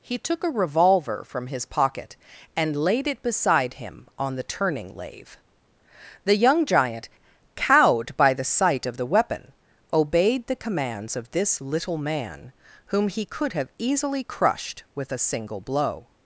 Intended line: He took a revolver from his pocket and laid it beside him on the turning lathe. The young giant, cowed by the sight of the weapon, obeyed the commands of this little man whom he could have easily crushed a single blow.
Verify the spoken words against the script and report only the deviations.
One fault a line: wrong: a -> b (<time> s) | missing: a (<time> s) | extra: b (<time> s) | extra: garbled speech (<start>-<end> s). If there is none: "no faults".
extra: with (14.9 s)